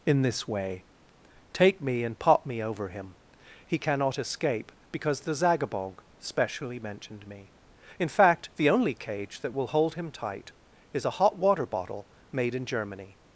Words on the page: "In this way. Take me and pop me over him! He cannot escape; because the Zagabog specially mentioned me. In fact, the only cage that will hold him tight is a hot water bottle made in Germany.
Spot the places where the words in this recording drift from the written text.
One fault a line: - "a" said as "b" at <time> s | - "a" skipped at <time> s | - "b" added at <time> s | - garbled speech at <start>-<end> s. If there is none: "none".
none